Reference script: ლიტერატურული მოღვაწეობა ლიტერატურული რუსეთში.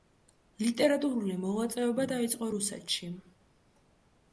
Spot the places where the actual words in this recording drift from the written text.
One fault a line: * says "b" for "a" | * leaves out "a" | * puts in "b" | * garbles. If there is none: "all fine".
* says "დაიწყო" for "ლიტერატურული"